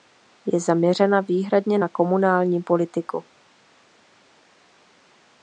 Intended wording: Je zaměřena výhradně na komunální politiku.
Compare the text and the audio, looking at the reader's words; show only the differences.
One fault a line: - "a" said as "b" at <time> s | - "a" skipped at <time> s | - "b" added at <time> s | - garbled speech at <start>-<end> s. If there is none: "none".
none